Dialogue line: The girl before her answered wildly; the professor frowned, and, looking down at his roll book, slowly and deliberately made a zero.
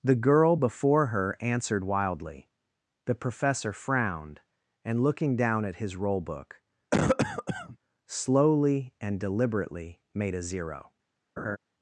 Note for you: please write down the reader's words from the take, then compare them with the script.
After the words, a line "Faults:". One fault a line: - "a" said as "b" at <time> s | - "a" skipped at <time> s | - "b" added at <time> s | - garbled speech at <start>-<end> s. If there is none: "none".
The girl before her answered wildly; the professor frowned, and, looking down at his roll book, slowly and deliberately made a zero.
Faults:
none